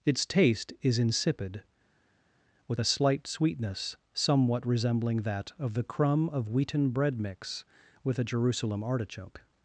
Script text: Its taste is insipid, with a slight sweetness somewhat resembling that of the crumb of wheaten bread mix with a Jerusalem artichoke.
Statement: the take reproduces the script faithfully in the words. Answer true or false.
true